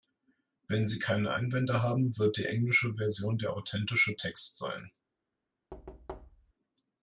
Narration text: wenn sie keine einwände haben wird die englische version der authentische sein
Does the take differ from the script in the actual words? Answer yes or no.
yes